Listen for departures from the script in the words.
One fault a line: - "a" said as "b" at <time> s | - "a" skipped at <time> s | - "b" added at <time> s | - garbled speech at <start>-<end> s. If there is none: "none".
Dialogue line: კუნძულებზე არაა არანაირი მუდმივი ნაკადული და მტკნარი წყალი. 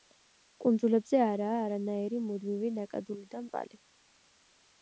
- "მტკნარი" skipped at 3.4 s